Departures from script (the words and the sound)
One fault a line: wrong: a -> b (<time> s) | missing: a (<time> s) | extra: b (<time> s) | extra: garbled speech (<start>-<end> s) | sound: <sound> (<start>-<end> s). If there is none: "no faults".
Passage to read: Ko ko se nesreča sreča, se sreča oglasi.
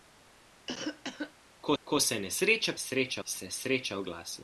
sound: cough (0.7-1.3 s)